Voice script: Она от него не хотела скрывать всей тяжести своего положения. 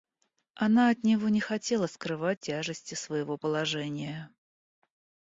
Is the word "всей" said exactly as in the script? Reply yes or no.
no